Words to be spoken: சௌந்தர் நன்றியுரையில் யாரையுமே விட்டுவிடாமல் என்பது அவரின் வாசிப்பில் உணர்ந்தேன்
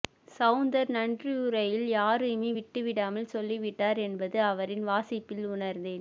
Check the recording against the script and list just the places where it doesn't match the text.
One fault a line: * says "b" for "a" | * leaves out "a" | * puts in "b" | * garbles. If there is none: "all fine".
* puts in "சொல்லிவிட்டார்"